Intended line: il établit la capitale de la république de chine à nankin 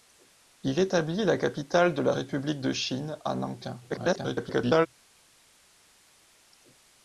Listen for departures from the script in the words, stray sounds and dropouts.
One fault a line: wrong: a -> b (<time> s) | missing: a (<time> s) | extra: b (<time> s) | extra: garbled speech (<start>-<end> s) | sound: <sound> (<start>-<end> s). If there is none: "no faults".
extra: garbled speech (3.9-4.9 s)